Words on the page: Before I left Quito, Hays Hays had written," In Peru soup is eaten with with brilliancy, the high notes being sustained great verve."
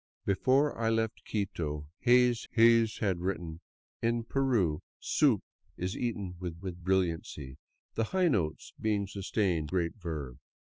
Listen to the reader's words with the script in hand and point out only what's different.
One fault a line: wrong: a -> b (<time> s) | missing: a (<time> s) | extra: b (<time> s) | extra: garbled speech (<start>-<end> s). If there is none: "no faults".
no faults